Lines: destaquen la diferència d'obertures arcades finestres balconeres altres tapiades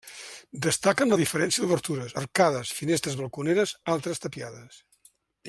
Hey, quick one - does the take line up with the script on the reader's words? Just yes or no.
yes